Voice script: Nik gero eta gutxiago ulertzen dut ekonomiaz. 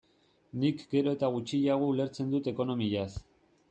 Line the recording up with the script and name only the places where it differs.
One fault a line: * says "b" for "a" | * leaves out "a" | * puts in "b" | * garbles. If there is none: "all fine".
all fine